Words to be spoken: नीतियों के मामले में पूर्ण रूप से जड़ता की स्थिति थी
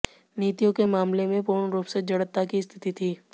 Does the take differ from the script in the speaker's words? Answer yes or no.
no